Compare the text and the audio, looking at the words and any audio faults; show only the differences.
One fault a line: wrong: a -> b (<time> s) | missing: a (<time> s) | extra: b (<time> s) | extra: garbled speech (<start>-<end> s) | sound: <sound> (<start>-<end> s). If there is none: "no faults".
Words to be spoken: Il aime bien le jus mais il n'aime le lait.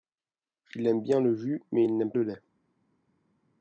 no faults